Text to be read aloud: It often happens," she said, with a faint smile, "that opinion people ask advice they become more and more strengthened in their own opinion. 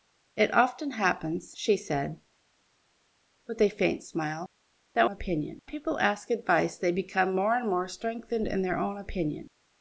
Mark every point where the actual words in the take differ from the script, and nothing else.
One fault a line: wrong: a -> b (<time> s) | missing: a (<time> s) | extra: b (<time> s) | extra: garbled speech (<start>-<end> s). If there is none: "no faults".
no faults